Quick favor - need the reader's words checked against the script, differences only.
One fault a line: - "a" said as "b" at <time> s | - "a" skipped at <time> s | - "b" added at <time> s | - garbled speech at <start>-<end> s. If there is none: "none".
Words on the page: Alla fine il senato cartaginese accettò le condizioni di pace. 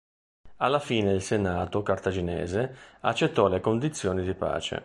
none